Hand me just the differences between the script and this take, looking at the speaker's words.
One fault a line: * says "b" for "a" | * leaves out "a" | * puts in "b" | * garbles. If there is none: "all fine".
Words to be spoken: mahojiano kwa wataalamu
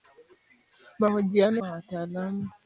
all fine